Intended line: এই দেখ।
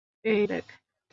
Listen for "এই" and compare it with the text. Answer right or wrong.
right